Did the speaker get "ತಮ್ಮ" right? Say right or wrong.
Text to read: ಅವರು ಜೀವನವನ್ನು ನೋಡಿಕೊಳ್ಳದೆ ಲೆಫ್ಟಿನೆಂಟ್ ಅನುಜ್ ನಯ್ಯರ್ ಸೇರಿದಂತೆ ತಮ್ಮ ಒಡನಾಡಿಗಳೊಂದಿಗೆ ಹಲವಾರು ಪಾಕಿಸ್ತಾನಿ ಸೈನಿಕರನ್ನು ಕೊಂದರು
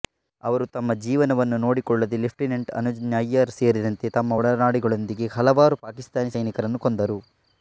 right